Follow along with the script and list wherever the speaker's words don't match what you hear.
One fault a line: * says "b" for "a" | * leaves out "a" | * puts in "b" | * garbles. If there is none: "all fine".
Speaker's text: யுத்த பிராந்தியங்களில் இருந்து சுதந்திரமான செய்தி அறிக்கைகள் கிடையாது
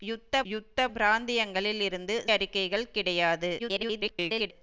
* puts in "யுத்த"
* leaves out "சுதந்திரமான செய்தி"
* garbles